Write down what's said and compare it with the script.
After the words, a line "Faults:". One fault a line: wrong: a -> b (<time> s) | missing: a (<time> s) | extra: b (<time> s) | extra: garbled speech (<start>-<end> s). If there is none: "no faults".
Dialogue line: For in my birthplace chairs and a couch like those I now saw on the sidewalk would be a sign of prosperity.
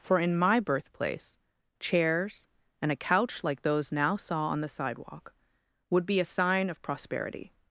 For in my birthplace chairs and a couch like those now saw on the sidewalk would be a sign of prosperity.
Faults:
missing: I (3.9 s)